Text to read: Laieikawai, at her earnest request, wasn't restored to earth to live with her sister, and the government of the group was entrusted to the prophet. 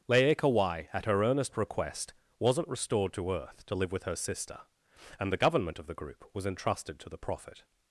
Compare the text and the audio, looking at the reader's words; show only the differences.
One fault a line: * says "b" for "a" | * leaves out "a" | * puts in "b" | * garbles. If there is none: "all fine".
all fine